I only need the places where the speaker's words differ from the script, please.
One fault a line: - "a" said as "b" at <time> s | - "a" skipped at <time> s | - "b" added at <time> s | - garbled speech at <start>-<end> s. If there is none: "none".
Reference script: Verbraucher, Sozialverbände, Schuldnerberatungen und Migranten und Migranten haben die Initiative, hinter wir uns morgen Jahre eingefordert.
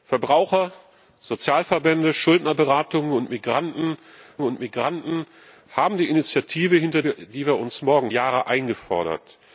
none